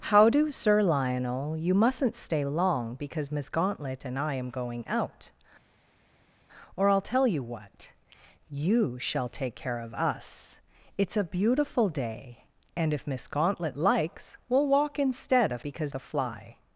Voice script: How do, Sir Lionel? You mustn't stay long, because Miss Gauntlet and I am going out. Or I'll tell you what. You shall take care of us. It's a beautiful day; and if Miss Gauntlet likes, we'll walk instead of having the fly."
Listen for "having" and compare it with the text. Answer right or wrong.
wrong